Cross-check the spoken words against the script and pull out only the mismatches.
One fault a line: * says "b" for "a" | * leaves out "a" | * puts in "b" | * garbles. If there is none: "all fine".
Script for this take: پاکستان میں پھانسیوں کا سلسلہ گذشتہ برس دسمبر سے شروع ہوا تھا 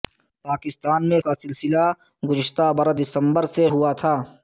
* leaves out "پھانسیوں"
* leaves out "شروع"